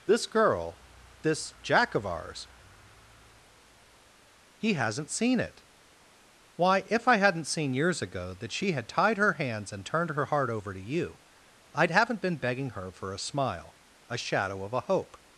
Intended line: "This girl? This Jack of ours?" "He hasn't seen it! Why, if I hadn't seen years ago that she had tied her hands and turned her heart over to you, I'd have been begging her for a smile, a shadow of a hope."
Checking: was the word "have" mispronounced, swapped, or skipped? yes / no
yes